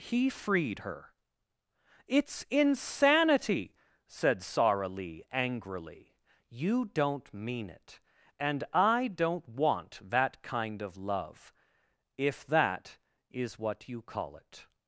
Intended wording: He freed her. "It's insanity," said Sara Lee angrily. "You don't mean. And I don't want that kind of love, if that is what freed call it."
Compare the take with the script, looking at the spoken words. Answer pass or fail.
fail